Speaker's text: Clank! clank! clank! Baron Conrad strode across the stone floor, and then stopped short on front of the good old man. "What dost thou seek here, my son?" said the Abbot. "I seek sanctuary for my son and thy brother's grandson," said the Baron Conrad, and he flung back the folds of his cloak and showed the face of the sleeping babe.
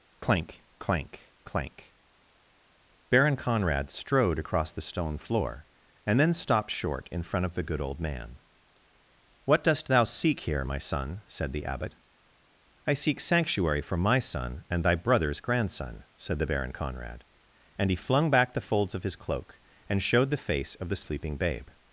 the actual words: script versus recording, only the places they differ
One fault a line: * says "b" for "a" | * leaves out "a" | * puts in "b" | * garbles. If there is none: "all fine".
* says "in" for "on"